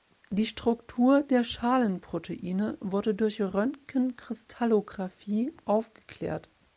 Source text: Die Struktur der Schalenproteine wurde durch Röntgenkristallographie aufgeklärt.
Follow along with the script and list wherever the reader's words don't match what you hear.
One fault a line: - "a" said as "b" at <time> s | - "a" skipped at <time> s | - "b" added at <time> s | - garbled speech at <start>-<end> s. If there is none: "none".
none